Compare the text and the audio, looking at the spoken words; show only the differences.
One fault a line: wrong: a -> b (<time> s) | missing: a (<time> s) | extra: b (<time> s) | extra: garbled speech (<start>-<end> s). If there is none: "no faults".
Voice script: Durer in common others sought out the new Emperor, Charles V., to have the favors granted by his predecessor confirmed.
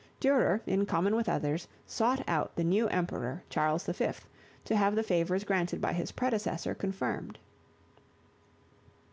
extra: with (1.1 s)